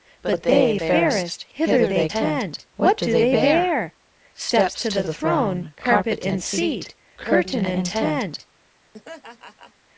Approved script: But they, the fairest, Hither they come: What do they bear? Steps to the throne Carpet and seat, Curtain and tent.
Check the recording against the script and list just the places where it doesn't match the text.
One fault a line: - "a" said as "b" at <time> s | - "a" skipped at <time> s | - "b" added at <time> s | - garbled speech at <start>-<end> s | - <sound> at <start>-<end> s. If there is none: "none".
- "the" skipped at 0.8 s
- "come" said as "tent" at 2.1 s
- laugh at 8.9-9.7 s